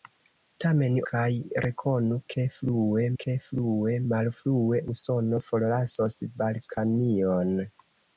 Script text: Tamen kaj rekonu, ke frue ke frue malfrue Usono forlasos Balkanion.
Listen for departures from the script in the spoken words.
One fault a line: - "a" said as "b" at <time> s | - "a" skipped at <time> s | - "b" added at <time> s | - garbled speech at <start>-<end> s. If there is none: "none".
none